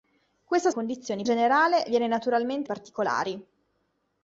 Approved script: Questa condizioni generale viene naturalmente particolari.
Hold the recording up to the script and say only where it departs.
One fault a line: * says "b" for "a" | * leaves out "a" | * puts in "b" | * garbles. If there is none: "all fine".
all fine